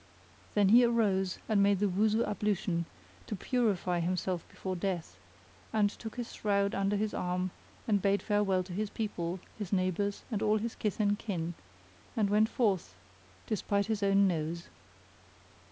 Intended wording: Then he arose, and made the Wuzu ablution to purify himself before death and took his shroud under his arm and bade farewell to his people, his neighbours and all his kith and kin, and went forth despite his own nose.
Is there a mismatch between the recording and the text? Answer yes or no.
no